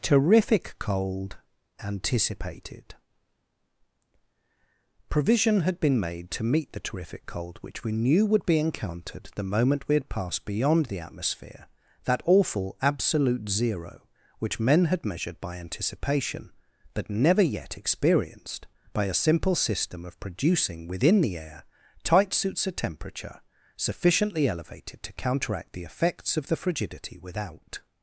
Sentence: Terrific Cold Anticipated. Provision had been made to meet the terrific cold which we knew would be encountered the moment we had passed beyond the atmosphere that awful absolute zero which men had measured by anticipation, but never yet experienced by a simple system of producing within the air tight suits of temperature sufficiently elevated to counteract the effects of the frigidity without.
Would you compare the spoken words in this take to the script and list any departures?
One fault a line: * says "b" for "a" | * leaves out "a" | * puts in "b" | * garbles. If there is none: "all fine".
all fine